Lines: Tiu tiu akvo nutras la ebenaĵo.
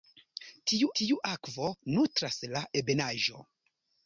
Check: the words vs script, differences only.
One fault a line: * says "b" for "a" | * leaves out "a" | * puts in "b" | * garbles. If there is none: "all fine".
all fine